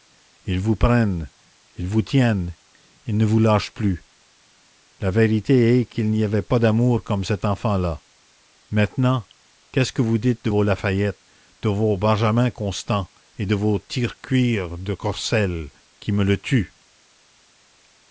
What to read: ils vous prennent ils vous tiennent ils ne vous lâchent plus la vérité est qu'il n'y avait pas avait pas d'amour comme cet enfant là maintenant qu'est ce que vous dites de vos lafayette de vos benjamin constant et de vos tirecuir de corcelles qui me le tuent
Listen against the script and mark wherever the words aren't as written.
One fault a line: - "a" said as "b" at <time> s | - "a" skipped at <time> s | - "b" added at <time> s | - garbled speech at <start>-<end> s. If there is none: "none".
- "avait pas" skipped at 6.6 s